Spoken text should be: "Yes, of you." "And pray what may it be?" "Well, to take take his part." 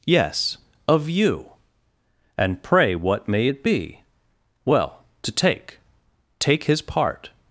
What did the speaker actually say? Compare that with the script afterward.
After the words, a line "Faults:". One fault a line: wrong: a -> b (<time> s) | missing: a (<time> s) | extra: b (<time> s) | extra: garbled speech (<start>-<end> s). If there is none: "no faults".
"Yes, of you." "And pray what may it be?" "Well, to take take his part."
Faults:
no faults